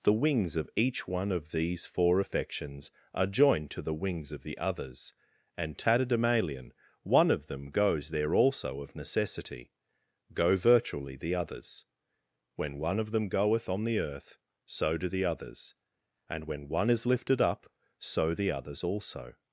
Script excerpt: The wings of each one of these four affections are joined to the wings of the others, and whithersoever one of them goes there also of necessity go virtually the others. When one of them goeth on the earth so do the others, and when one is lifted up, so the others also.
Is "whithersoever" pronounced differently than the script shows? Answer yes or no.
yes